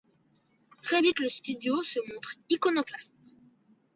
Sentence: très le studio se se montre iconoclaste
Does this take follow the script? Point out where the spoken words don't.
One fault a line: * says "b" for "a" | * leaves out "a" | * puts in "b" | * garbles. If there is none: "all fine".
* puts in "vite"
* leaves out "se"